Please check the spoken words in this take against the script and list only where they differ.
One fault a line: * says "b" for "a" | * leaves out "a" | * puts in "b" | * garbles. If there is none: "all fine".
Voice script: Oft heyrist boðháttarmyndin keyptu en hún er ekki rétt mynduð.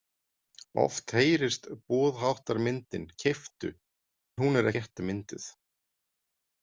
* leaves out "en"
* leaves out "ekki"